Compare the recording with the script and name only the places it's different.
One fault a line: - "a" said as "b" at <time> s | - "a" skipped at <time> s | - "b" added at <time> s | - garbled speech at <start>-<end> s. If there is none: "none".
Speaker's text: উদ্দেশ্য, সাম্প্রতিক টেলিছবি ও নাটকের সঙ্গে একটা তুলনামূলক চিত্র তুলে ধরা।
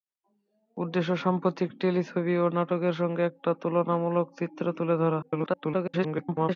- garbled speech at 5.2-6.6 s